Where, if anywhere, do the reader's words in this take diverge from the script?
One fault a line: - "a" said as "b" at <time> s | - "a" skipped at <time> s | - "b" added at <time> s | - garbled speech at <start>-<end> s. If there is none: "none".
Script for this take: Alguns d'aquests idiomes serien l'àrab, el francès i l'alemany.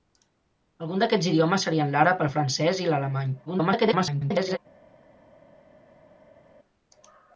- garbled speech at 3.5-4.6 s